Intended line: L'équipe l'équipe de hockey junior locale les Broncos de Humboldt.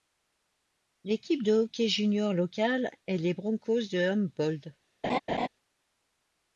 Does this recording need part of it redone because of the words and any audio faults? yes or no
yes